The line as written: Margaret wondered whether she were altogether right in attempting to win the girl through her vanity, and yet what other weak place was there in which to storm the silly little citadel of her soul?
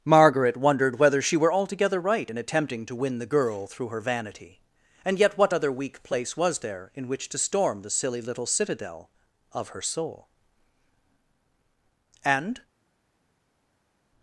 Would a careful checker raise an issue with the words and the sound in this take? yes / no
yes